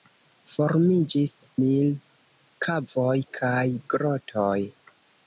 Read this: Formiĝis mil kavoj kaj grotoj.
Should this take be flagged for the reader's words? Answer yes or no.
no